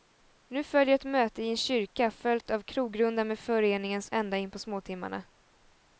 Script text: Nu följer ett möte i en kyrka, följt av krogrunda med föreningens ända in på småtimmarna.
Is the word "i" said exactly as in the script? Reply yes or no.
yes